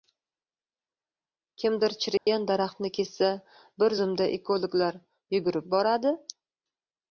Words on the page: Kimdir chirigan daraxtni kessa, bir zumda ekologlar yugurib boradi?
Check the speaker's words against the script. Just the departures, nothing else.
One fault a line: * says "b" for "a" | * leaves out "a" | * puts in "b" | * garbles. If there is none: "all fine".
all fine